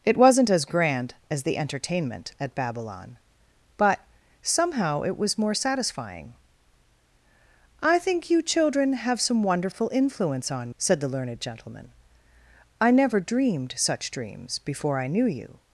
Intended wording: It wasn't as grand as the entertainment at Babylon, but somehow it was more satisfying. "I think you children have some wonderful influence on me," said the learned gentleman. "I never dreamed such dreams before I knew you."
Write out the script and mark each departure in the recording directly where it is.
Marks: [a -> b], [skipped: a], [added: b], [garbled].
It wasn't as grand as the entertainment at Babylon, but somehow it was more satisfying. "I think you children have some wonderful influence on [skipped: me,"] said the learned gentleman. "I never dreamed such dreams before I knew you."